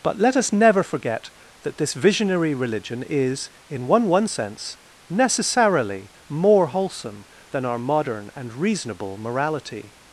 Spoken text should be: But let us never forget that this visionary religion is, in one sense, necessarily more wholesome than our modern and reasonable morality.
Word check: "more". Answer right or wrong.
right